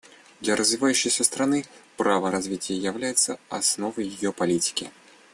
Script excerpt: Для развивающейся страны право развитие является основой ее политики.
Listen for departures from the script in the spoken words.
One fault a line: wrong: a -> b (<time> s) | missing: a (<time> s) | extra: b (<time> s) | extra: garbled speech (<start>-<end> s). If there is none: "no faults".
no faults